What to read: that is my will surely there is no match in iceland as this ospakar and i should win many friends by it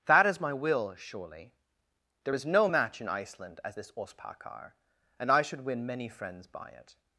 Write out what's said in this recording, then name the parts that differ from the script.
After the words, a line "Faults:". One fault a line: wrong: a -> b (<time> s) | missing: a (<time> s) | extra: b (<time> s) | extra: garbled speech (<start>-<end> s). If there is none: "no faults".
that is my will surely there is no match in iceland as this ospakar and i should win many friends by it
Faults:
no faults